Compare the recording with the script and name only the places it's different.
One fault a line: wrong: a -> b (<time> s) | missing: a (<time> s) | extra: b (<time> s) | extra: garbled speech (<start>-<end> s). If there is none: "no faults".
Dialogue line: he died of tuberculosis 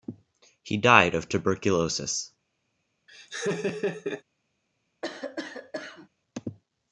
no faults